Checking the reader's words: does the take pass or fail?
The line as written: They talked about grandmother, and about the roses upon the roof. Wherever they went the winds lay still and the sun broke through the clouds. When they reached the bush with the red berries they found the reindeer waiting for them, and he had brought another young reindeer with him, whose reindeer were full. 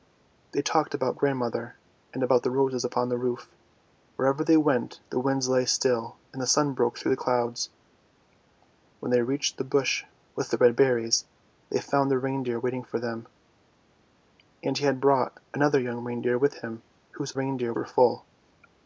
pass